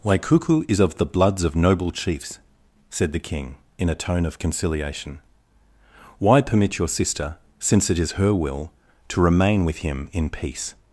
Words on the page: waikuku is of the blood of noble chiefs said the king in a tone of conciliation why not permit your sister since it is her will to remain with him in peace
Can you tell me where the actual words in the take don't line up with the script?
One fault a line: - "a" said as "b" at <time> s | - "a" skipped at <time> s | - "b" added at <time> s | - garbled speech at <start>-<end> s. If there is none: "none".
- "blood" said as "bloods" at 1.1 s
- "not" skipped at 6.4 s